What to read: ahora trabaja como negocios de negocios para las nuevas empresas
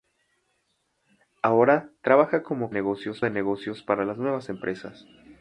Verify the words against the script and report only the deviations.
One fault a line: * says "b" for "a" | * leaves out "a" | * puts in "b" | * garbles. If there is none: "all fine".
all fine